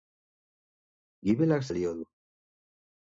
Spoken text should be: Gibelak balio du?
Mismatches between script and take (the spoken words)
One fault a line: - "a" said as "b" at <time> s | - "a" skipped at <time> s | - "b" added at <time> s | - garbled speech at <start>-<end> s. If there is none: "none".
none